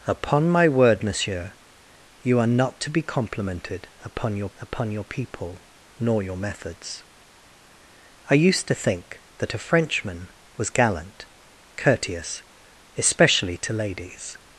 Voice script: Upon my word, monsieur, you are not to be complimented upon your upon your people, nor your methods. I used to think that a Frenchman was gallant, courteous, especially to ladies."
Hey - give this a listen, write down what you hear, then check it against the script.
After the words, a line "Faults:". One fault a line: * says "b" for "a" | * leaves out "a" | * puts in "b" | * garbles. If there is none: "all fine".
Upon my word, monsieur, you are not to be complimented upon your upon your people, nor your methods. I used to think that a Frenchman was gallant, courteous, especially to ladies."
Faults:
all fine